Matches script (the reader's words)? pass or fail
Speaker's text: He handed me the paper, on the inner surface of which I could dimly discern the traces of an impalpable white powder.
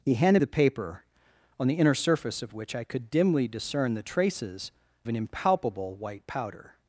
fail